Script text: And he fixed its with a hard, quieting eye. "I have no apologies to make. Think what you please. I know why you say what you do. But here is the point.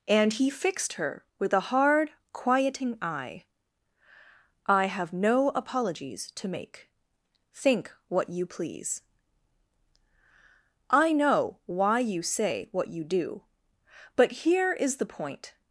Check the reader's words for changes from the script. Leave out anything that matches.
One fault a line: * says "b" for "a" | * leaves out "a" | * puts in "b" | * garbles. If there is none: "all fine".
* says "her" for "its"